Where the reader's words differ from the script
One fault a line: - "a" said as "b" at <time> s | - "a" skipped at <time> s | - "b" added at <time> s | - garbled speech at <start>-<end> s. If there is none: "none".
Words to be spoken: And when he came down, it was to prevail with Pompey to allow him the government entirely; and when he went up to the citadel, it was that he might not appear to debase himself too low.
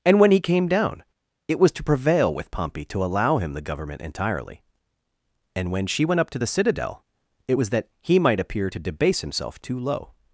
- "he" said as "she" at 5.8 s
- "not" skipped at 8.4 s